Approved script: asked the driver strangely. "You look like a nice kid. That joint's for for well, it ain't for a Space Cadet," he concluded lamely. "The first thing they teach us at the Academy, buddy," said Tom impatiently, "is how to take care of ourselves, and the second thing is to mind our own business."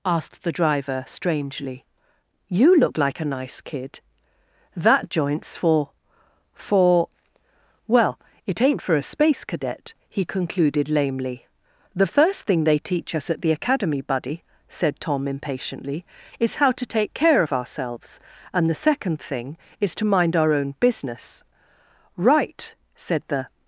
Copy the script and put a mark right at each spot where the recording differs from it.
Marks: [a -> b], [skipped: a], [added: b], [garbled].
asked the driver strangely. "You look like a nice kid. That joint's for for well, it ain't for a Space Cadet," he concluded lamely. "The first thing they teach us at the Academy, buddy," said Tom impatiently, "is how to take care of ourselves, and the second thing is to mind our own business." [added: Right said the]